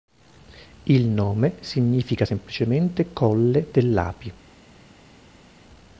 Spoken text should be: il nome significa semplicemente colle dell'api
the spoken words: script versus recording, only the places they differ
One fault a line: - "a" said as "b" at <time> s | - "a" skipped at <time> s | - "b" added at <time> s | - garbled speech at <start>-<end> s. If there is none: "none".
none